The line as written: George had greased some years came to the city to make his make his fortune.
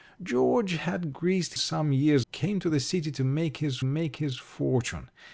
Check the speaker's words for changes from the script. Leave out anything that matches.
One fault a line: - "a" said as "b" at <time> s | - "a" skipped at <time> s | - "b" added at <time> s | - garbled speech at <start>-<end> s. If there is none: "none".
none